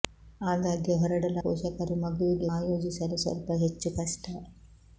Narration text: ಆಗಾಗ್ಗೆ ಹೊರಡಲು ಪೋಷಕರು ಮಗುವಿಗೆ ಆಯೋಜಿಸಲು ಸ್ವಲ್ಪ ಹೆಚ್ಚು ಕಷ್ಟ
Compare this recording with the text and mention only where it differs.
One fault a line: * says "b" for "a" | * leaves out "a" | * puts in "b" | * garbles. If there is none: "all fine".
all fine